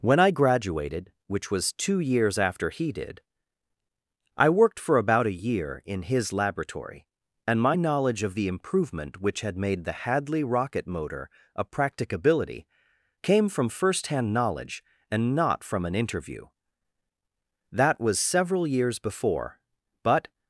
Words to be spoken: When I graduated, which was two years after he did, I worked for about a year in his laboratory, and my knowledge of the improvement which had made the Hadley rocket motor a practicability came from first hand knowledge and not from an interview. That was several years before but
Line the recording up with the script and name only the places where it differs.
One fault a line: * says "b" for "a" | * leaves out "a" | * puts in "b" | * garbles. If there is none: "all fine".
all fine